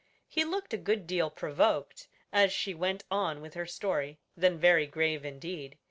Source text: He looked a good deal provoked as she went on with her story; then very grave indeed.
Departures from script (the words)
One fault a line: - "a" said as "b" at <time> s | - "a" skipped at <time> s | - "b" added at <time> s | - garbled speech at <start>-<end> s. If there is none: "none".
none